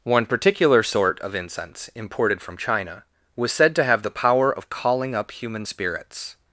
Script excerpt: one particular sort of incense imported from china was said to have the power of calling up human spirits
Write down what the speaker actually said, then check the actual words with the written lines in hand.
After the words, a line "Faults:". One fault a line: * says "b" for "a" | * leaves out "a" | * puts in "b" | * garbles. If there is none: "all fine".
one particular sort of incense imported from china was said to have the power of calling up human spirits
Faults:
all fine